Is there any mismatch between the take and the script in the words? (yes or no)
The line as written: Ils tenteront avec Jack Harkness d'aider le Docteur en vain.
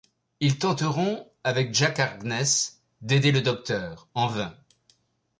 no